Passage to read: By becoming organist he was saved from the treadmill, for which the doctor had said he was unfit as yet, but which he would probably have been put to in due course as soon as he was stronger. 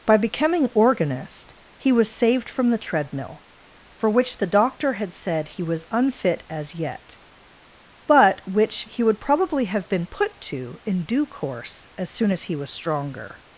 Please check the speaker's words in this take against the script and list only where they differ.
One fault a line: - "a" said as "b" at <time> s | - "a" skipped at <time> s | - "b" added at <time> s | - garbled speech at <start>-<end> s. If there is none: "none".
none